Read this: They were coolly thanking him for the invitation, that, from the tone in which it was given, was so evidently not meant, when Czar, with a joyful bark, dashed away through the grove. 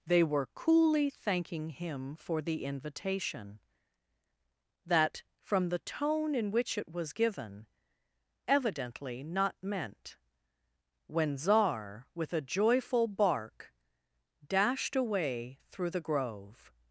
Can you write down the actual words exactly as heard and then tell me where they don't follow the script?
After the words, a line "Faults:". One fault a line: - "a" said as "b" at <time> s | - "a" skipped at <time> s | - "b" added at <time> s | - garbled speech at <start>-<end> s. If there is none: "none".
They were coolly thanking him for the invitation, that, from the tone in which it was given, evidently not meant, when Czar, with a joyful bark, dashed away through the grove.
Faults:
- "was so" skipped at 7.7 s